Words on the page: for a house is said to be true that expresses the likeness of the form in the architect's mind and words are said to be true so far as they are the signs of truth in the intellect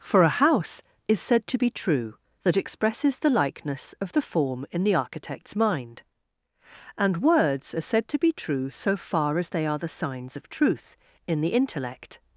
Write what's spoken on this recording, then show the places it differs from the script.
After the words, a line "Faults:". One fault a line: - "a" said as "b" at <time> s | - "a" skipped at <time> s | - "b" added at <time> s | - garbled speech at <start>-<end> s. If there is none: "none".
for a house is said to be true that expresses the likeness of the form in the architect's mind and words are said to be true so far as they are the signs of truth in the intellect
Faults:
none